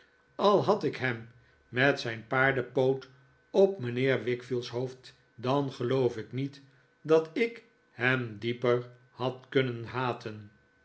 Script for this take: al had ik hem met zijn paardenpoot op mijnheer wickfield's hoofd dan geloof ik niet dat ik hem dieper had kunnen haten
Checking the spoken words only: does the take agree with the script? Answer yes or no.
yes